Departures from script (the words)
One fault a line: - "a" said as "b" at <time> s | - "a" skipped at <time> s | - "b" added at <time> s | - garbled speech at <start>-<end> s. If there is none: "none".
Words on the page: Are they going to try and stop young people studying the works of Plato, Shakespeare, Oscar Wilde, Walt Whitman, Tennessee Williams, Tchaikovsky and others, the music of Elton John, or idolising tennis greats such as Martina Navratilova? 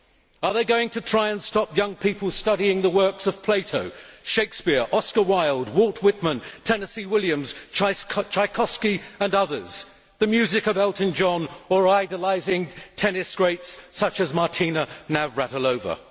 none